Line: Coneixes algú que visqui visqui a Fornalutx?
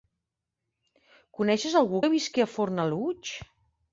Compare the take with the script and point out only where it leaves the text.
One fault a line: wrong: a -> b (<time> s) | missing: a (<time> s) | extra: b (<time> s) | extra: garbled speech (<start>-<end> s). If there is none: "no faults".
missing: visqui (2.4 s)